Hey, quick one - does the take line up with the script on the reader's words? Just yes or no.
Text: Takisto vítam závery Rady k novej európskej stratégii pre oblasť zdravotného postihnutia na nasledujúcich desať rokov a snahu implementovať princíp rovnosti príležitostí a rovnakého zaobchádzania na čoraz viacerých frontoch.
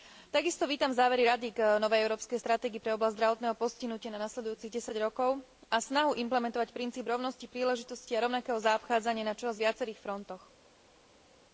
yes